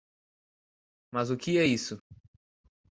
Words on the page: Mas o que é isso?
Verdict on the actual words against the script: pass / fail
pass